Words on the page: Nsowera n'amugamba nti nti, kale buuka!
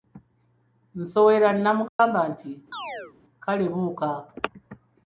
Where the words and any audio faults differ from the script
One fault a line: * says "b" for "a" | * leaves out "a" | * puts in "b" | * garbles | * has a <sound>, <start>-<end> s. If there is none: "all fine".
* has a dropout, 1.9-2.0 s
* leaves out "nti"
* has a chirp, 2.7-3.1 s